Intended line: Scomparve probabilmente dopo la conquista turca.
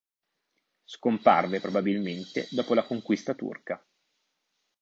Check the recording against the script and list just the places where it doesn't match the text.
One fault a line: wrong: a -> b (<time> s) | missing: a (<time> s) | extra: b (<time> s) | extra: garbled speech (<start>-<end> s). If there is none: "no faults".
no faults